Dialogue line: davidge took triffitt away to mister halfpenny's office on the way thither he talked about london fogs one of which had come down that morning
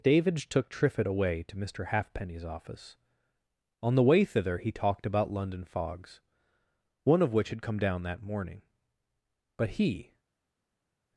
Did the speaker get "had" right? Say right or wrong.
right